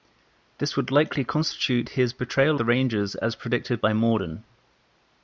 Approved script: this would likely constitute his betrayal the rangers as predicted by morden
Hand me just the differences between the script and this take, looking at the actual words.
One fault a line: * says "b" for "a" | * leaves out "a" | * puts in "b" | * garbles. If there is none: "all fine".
all fine